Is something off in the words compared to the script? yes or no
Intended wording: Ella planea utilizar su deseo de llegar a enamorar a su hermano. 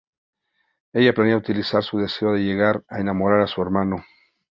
no